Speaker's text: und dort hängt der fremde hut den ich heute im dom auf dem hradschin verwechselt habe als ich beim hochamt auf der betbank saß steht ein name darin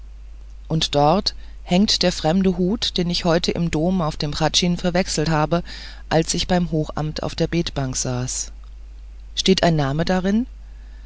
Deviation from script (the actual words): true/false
false